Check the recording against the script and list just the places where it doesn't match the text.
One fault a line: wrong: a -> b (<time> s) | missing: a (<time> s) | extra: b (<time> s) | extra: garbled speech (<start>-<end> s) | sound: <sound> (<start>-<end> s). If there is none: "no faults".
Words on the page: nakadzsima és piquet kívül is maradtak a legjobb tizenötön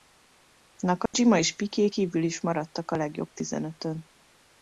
sound: dropout (1.1-1.1 s)